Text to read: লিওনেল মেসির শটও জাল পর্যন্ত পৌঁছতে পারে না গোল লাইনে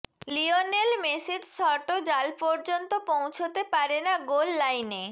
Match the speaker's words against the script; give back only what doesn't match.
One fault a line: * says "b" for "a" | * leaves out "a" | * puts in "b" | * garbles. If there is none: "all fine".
all fine